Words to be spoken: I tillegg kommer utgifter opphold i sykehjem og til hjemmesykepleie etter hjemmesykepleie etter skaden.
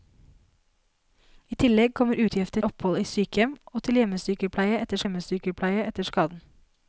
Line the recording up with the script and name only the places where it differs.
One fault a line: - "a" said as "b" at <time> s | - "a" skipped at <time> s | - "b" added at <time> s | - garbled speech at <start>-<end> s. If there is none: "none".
none